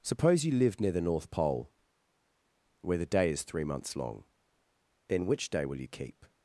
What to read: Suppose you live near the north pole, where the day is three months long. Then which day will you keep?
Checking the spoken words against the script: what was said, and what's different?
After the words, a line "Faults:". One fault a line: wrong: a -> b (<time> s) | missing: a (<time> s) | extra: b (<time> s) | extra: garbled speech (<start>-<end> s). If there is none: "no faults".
Suppose you live near the north pole, where the day is three months long. Then which day will you keep?
Faults:
no faults